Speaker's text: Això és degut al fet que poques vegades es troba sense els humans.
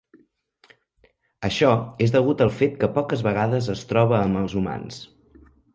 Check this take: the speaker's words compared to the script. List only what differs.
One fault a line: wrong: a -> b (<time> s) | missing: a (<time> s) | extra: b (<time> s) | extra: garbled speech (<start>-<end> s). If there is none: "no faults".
wrong: sense -> amb (4.3 s)